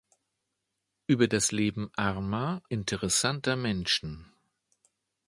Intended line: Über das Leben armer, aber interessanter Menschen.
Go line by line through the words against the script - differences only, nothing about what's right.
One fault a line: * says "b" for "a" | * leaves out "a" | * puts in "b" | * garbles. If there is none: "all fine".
* leaves out "aber"